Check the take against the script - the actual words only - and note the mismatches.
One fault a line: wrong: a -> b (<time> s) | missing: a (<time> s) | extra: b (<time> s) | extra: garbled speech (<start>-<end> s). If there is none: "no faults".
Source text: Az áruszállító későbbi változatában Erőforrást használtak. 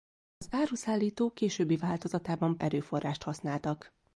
no faults